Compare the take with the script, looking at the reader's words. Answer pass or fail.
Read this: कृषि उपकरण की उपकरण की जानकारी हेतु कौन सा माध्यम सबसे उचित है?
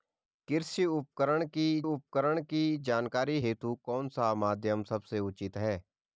pass